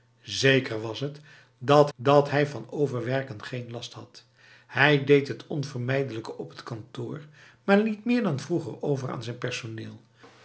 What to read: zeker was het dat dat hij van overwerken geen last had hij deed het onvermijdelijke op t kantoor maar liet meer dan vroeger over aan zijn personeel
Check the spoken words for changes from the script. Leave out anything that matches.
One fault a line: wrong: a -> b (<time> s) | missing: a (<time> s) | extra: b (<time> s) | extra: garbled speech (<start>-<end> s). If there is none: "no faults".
no faults